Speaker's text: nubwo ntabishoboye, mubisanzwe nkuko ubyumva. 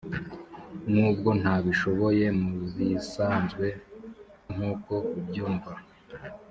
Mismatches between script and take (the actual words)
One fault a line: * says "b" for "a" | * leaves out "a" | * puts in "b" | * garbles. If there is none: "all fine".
all fine